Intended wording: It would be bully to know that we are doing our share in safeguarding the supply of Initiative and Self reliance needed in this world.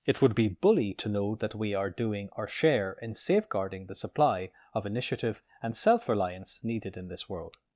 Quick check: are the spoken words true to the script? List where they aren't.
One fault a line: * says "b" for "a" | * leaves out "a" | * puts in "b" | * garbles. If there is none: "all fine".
all fine